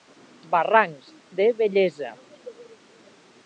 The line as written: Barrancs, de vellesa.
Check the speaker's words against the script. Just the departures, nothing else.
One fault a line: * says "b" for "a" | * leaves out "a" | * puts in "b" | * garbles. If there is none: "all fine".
all fine